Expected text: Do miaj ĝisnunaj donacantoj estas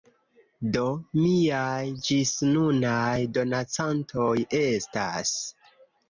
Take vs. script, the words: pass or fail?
pass